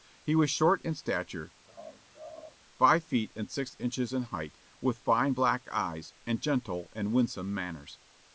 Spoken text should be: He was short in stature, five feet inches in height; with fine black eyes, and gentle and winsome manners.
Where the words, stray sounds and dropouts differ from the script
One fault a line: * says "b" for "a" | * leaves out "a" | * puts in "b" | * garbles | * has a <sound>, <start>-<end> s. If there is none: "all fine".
* has a laugh, 1.7-2.6 s
* puts in "and six"